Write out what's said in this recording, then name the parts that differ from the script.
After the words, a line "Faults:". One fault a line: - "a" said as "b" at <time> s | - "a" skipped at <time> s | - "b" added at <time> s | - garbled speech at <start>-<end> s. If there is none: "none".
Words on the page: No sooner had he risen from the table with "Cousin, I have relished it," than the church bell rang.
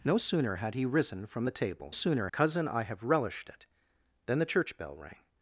No sooner had he risen from the table sooner "Cousin, I have relished it," than the church bell rang.
Faults:
- "with" said as "sooner" at 1.9 s